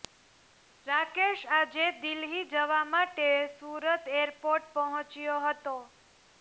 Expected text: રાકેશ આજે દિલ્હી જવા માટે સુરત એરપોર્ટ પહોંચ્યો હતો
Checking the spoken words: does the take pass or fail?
pass